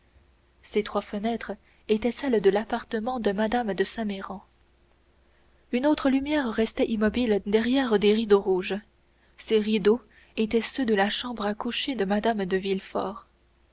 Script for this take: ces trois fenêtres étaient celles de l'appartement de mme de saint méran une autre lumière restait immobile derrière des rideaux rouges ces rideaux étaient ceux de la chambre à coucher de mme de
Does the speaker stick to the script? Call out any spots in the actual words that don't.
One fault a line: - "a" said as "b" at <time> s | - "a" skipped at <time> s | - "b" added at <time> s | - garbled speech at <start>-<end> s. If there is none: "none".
none